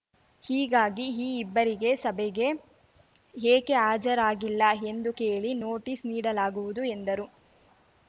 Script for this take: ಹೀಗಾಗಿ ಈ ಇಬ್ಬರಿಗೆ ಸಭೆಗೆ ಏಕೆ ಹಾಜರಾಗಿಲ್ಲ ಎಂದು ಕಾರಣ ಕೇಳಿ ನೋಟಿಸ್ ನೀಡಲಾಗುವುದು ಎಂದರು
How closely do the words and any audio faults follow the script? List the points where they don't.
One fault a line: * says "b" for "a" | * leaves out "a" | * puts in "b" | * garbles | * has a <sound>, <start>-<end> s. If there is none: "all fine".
* leaves out "ಕಾರಣ"